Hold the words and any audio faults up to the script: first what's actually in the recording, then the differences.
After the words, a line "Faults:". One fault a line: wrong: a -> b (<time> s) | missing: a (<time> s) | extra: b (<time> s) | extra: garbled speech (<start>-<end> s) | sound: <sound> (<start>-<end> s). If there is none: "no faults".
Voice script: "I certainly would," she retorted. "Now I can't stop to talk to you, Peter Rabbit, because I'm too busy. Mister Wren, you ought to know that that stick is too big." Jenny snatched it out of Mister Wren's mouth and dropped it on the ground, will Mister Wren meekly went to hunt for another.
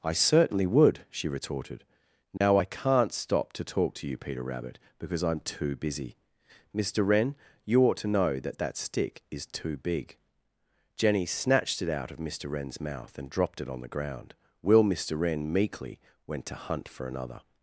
"I certainly would," she retorted. "Now I can't stop to talk to you, Peter Rabbit, because I'm too busy. Mister Wren, you ought to know that that stick is too big." Jenny snatched it out of Mister Wren's mouth and dropped it on the ground, will Mister Wren meekly went to hunt for another.
Faults:
sound: dropout (2.4-2.4 s)